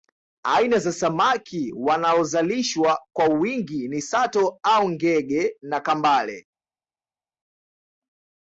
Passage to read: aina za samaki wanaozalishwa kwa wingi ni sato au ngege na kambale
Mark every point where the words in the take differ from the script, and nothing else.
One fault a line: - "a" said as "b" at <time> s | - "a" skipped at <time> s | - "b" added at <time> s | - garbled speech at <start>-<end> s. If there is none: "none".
none